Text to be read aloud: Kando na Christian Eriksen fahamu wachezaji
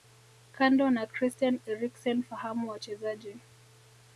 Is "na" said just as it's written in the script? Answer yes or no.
yes